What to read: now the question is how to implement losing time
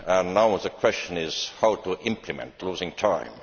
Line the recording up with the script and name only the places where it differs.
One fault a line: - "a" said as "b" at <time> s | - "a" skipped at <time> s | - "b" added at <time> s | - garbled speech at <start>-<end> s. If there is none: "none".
none